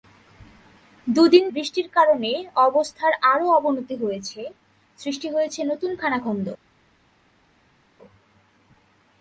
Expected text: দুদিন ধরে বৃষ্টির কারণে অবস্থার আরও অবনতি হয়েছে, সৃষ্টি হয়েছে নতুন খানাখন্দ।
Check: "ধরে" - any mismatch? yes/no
yes